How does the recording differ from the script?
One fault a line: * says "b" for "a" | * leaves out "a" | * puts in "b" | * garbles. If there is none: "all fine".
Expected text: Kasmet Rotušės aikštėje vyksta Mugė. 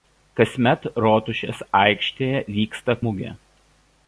all fine